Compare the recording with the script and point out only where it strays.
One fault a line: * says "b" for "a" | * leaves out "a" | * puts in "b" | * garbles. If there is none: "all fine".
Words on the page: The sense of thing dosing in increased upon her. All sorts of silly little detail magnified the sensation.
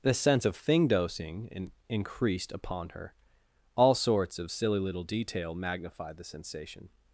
all fine